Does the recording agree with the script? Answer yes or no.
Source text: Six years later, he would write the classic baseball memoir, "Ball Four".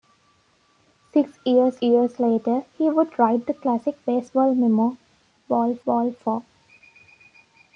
no